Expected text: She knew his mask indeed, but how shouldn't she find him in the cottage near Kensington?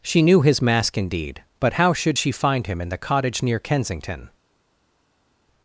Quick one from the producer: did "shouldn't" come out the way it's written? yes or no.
no